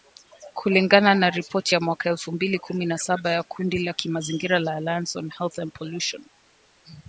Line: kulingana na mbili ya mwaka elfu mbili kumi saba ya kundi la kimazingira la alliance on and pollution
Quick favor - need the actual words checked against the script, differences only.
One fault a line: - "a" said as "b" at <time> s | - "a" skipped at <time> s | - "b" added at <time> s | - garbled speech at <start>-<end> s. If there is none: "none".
- "mbili" said as "ripoti" at 1.3 s
- "na" added at 2.8 s
- "health" added at 5.4 s